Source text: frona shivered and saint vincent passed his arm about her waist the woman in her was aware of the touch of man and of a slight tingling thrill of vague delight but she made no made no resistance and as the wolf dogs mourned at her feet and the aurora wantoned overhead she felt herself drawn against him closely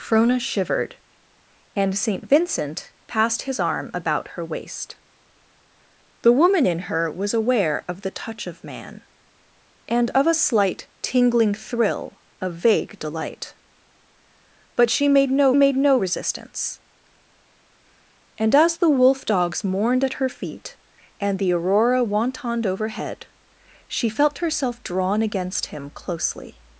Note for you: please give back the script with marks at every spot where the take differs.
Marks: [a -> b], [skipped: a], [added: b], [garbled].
frona shivered and saint vincent passed his arm about her waist the woman in her was aware of the touch of man and of a slight tingling thrill of vague delight but she made no made no resistance and as the wolf dogs mourned at her feet and the aurora wantoned overhead she felt herself drawn against him closely